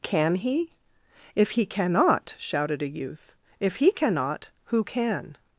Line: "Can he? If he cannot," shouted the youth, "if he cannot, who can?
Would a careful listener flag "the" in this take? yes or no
yes